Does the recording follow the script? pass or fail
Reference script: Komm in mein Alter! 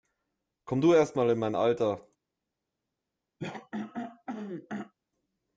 fail